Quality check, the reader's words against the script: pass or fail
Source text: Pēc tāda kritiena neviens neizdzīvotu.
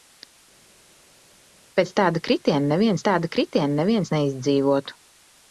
fail